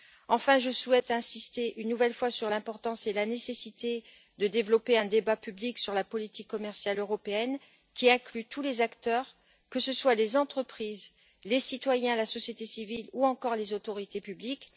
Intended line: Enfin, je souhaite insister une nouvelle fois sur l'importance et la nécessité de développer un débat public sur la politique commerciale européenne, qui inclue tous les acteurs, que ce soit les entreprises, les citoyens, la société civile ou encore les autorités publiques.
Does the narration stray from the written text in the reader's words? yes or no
no